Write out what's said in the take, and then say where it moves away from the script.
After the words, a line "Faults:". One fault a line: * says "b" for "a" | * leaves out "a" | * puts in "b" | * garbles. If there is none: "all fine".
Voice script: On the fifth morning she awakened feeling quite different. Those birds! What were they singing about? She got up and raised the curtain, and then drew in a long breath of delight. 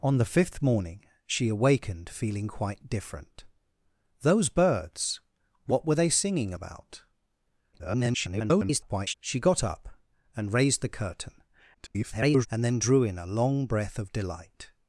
On the fifth morning she awakened feeling quite different. Those birds! What were they singing about? [garbled] She got up and raised the curtain, [garbled] and then drew in a long breath of delight.
Faults:
* garbles
* garbles